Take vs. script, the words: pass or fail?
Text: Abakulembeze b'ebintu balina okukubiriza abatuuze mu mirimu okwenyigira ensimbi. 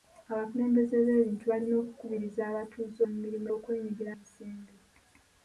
pass